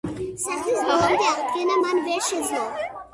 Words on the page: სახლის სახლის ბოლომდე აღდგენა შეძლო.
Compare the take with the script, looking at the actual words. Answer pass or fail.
fail